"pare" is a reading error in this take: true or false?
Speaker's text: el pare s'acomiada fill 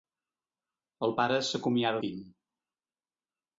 false